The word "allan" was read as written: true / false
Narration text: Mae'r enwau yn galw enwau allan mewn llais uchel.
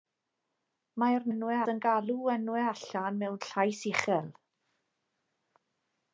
true